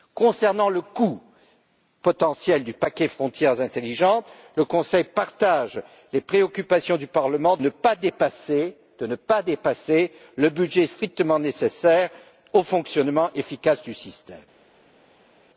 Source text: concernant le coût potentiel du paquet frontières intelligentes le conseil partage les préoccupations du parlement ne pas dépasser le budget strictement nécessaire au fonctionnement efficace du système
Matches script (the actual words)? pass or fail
pass